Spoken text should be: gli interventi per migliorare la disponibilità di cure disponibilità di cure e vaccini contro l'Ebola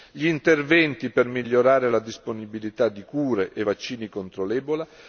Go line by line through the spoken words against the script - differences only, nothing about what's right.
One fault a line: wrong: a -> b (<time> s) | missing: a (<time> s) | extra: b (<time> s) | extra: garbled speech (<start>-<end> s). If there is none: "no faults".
missing: disponibilità di cure (3.5 s)